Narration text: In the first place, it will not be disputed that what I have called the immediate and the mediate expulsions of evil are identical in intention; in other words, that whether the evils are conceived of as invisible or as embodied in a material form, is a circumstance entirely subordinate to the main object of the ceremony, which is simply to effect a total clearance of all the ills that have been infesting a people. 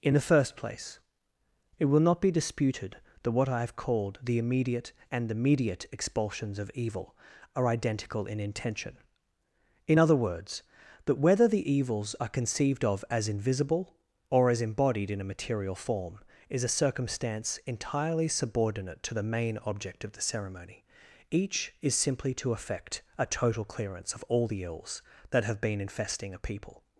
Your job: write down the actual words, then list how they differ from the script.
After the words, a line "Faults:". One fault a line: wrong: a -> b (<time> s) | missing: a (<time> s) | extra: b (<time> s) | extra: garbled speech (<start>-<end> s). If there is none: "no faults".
In the first place, it will not be disputed that what I have called the immediate and the mediate expulsions of evil are identical in intention; in other words, that whether the evils are conceived of as invisible or as embodied in a material form, is a circumstance entirely subordinate to the main object of the ceremony, each is simply to effect a total clearance of all the ills that have been infesting a people.
Faults:
wrong: which -> each (21.3 s)